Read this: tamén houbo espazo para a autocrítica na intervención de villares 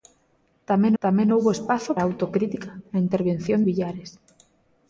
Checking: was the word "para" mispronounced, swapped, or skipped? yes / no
yes